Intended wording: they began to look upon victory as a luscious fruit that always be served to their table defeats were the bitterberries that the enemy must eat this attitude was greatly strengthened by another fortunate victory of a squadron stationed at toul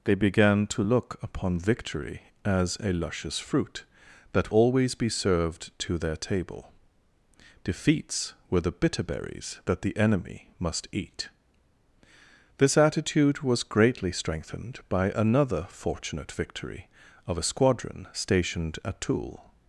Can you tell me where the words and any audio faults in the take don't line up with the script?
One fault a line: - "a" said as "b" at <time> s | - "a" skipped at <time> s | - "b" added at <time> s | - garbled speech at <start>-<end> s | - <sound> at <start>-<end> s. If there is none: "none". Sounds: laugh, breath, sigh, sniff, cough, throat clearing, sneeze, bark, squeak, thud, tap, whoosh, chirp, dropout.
none